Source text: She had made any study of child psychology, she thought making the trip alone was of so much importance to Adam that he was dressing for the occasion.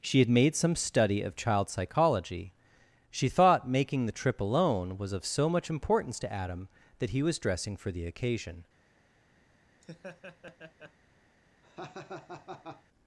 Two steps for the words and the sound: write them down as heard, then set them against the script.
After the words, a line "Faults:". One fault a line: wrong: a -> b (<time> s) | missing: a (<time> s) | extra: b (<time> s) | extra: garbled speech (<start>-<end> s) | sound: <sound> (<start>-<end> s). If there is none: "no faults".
She had made some study of child psychology, she thought making the trip alone was of so much importance to Adam that he was dressing for the occasion.
Faults:
wrong: any -> some (0.6 s)
sound: laugh (9.8-10.9 s)
sound: laugh (11.6-12.8 s)